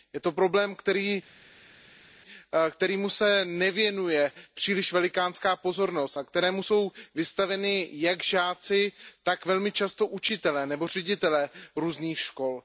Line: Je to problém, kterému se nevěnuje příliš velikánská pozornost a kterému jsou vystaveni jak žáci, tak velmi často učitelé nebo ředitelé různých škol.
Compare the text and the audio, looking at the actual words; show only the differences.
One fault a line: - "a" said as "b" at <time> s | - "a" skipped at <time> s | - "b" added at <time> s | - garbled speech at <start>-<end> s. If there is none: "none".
none